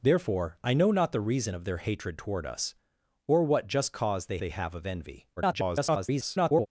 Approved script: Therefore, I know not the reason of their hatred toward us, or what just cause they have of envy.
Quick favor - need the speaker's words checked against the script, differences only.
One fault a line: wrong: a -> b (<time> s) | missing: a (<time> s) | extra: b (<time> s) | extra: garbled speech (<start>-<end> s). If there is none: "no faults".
extra: they (4.4 s)
extra: garbled speech (5.4-6.7 s)